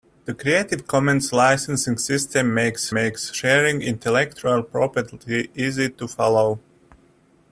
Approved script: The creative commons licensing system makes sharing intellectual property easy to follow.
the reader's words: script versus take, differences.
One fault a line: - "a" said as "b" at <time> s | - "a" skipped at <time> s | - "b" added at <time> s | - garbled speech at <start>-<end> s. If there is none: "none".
- "makes" added at 2.9 s